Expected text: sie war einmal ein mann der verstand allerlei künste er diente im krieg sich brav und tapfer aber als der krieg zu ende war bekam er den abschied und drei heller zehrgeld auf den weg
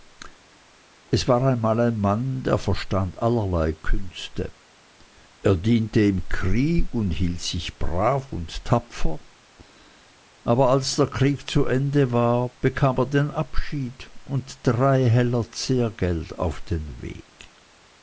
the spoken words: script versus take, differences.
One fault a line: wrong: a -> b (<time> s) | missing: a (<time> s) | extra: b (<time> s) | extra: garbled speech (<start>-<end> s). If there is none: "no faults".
wrong: sie -> es (1.1 s)
extra: und hielt (7.0 s)